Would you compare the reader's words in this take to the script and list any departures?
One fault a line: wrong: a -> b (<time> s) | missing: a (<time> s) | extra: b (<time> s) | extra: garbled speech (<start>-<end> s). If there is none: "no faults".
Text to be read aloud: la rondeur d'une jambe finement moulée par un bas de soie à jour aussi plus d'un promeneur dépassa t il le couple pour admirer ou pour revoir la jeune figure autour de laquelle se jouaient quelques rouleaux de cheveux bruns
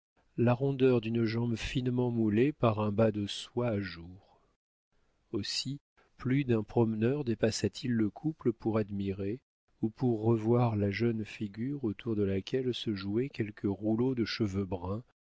no faults